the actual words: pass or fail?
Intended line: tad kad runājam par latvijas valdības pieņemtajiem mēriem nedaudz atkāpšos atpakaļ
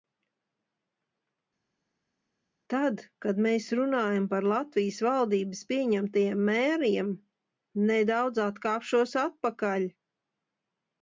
fail